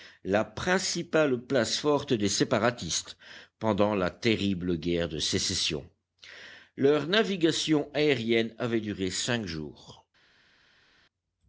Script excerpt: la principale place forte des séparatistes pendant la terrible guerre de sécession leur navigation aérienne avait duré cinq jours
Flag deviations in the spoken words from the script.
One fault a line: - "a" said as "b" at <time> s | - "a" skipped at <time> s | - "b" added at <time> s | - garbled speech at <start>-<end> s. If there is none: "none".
none